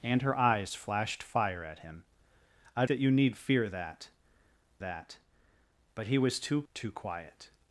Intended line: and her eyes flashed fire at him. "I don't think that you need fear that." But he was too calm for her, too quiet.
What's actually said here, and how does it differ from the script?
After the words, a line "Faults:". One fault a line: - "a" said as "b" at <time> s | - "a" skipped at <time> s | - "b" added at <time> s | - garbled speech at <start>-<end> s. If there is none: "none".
and her eyes flashed fire at him. "I that you need fear that that." But he was too too quiet.
Faults:
- "don't think" skipped at 2.9 s
- "that" added at 4.8 s
- "calm for her" skipped at 6.6 s